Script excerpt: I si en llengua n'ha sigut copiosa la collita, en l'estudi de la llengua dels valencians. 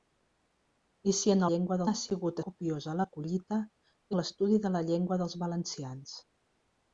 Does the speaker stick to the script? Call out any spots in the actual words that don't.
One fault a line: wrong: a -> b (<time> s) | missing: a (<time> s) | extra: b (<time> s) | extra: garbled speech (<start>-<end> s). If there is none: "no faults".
no faults